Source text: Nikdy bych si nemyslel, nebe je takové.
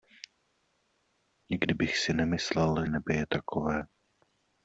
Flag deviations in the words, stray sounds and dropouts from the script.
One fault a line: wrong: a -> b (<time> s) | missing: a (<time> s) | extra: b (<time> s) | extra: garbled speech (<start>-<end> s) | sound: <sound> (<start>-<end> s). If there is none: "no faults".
no faults